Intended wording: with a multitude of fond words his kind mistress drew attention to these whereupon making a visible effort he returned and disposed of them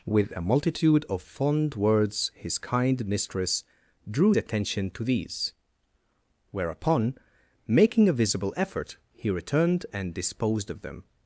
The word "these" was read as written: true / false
true